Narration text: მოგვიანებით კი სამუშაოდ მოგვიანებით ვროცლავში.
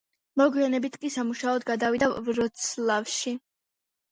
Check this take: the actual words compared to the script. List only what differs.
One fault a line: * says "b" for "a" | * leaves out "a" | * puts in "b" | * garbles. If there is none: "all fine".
* says "გადავიდა" for "მოგვიანებით"